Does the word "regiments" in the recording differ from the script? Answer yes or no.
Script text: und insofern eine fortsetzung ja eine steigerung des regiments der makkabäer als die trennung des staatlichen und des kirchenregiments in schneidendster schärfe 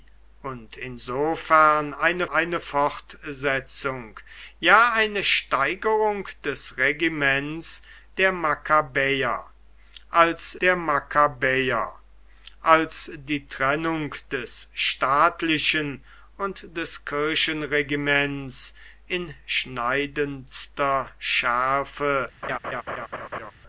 no